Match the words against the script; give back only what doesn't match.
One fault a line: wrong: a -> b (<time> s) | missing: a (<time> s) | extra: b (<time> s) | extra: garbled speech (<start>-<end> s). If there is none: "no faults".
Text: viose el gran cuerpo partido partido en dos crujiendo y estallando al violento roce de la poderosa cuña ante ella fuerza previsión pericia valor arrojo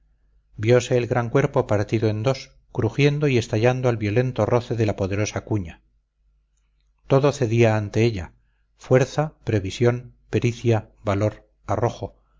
missing: partido (2.1 s)
extra: todo cedía (7.1 s)